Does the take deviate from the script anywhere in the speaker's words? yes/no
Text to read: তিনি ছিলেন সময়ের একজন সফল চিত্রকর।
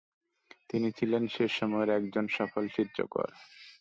yes